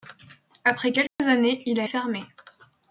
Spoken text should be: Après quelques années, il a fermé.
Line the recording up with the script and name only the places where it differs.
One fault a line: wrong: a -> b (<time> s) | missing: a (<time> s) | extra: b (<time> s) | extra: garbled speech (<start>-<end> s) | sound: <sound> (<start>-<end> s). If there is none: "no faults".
sound: dropout (1.1-1.2 s)